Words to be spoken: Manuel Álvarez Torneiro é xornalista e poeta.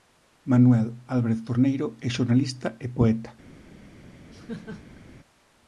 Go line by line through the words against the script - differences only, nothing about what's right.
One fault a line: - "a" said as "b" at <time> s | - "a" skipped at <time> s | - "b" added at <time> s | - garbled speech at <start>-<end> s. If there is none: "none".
none